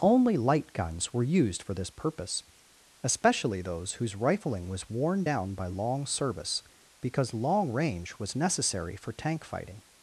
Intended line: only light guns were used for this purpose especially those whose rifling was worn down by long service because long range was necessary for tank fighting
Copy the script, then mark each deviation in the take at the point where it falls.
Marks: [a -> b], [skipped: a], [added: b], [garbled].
only light guns were used for this purpose especially those whose rifling was worn down by long service because long range was necessary for tank fighting